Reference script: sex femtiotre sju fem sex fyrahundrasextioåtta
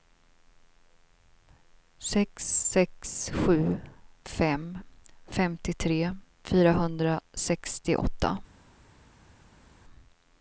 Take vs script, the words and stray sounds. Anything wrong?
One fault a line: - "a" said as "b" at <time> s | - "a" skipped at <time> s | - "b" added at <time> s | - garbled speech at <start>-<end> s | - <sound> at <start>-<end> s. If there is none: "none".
- "femtiotre" said as "sex" at 2.7 s
- "sex" said as "femtiotre" at 5.3 s